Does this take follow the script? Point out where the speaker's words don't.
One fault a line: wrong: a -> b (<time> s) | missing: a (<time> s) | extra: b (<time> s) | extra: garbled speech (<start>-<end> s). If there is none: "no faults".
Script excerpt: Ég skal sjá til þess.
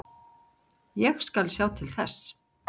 no faults